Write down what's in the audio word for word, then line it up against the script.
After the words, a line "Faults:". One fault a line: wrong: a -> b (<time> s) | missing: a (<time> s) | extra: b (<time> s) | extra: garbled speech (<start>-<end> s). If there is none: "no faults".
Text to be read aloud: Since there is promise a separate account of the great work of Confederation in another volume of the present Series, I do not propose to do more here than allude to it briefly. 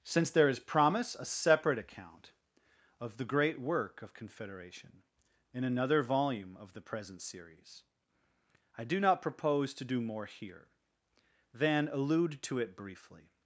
Since there is promise a separate account of the great work of Confederation in another volume of the present Series, I do not propose to do more here than allude to it briefly.
Faults:
no faults